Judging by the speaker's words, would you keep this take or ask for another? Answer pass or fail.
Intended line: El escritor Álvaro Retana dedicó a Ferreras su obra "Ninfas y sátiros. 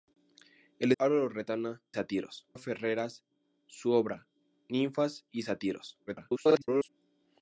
fail